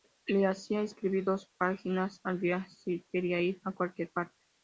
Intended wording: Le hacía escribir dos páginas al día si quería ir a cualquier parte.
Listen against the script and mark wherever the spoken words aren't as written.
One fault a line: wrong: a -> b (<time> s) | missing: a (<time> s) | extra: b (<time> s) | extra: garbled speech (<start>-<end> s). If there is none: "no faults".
no faults